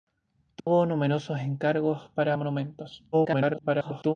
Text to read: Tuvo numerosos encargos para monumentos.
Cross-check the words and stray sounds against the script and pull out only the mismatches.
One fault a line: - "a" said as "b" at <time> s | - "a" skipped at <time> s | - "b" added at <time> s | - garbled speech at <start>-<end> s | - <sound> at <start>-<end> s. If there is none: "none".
- dropout at 0.6-0.7 s
- garbled speech at 3.1-4.1 s